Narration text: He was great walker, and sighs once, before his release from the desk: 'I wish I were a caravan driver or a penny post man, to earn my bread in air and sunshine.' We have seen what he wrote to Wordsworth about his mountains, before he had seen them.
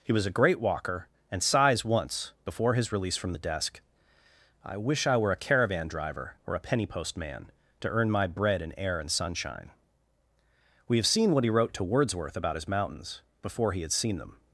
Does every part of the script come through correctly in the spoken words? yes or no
no